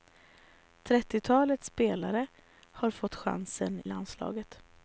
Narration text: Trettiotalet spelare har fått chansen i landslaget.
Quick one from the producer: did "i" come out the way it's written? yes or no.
no